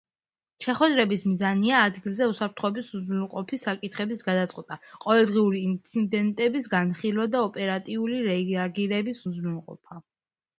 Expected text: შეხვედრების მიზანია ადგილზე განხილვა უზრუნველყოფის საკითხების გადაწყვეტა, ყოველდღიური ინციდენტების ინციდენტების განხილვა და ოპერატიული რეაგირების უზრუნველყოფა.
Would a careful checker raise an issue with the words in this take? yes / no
yes